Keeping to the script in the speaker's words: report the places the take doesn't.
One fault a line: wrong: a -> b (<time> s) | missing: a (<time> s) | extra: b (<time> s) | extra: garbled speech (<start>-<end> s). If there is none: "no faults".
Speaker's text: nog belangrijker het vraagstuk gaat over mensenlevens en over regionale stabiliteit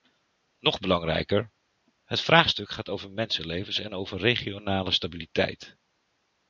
no faults